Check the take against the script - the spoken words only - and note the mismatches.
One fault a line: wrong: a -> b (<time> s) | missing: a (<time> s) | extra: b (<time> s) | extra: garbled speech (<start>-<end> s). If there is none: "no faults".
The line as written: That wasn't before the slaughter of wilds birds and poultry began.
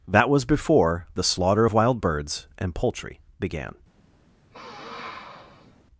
wrong: wasn't -> was (0.3 s)
wrong: wilds -> wild (1.7 s)